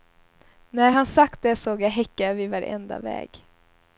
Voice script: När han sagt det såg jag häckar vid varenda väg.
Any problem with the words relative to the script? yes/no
no